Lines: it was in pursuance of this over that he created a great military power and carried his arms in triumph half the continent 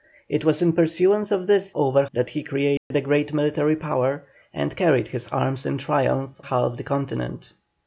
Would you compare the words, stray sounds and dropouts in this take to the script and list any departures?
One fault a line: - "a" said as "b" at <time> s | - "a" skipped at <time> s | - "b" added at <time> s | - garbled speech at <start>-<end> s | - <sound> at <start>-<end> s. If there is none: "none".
- dropout at 2.8-2.9 s